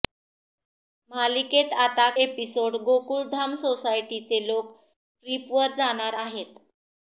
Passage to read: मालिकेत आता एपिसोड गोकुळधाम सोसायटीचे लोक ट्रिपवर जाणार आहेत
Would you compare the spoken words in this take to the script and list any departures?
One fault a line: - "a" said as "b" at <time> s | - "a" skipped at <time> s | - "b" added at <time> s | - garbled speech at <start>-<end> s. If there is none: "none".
none